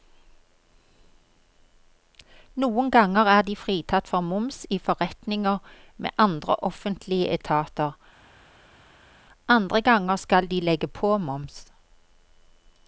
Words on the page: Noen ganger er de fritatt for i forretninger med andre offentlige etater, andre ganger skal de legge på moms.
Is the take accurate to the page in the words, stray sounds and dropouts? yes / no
no